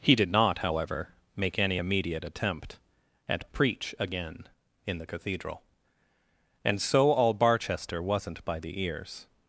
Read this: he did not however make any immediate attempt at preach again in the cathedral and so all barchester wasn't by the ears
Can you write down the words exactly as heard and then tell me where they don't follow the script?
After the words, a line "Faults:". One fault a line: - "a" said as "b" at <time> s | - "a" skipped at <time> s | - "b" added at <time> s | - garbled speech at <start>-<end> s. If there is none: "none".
he did not however make any immediate attempt at preach again in the cathedral and so all barchester wasn't by the ears
Faults:
none